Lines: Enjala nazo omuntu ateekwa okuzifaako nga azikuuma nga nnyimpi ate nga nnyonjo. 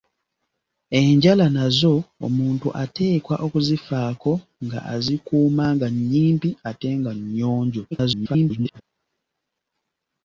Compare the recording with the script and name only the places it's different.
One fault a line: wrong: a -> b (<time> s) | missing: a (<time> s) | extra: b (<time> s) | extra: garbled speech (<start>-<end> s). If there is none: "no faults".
extra: garbled speech (7.9-8.8 s)